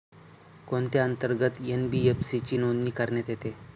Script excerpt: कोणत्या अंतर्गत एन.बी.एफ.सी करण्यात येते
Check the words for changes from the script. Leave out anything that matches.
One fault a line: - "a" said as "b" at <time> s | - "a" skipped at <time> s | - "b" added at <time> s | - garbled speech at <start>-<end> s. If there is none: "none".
- "ची नोंदणी" added at 2.4 s